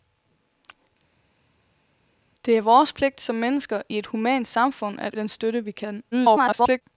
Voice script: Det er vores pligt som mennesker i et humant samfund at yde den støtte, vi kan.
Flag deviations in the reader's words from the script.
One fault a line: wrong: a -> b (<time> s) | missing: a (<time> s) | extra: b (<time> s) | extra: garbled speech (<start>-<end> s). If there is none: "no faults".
missing: yde (5.1 s)
extra: garbled speech (6.1-6.8 s)